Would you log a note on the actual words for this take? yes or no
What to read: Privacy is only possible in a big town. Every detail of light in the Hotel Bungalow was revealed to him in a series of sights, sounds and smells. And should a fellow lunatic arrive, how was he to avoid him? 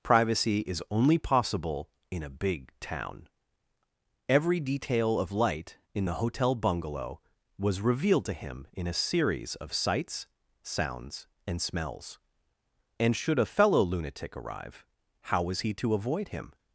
no